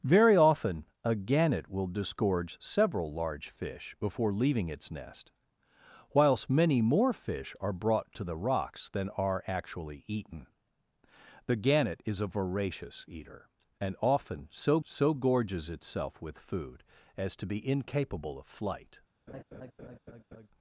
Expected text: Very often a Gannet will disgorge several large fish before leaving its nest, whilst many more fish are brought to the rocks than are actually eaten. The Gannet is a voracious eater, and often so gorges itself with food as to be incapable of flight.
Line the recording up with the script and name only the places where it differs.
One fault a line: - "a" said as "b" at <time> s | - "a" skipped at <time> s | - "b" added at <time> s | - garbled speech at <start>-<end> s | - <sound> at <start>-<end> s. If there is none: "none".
- "so" added at 14.8 s
- laugh at 19.3-20.5 s